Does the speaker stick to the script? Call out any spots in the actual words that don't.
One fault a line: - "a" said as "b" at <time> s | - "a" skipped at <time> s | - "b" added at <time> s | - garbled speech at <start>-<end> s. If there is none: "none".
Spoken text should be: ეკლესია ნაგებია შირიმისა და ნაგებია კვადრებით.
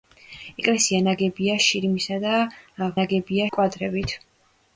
none